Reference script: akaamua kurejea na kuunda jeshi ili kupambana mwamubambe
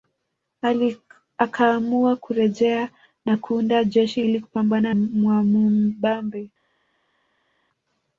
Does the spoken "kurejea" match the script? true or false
true